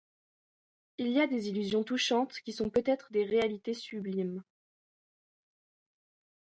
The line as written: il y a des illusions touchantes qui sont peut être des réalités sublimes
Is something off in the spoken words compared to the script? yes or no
no